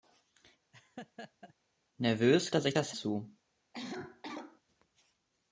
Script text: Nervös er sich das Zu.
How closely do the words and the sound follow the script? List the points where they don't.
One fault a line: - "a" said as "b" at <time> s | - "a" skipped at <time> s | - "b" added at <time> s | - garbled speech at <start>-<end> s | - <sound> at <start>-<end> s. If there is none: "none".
- laugh at 0.7-1.5 s
- cough at 3.7-4.6 s